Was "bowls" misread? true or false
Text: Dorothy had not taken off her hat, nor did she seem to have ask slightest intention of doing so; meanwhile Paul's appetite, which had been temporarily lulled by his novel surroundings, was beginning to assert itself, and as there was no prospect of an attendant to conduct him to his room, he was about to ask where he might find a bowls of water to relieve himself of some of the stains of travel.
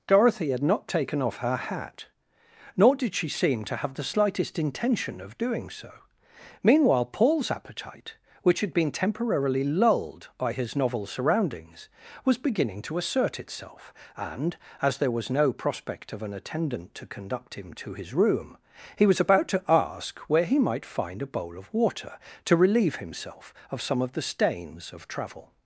true